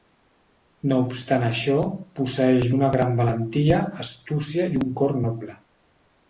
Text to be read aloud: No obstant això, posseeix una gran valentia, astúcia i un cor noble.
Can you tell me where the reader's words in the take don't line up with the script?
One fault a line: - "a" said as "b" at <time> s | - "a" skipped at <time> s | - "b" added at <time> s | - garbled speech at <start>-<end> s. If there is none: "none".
none